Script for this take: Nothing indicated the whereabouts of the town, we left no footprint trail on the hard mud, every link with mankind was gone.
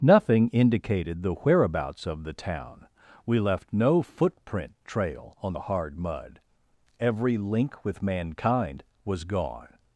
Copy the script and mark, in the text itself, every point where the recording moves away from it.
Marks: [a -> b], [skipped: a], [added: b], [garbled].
Nothing indicated the whereabouts of the town, we left no footprint trail on the hard mud, every link with mankind was gone.